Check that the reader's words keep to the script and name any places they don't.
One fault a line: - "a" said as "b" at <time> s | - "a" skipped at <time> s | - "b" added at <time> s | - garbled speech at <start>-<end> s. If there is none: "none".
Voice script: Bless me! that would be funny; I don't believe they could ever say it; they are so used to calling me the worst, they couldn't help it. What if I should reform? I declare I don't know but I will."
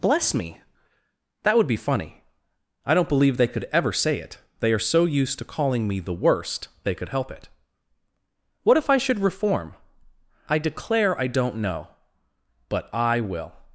- "couldn't" said as "could" at 6.9 s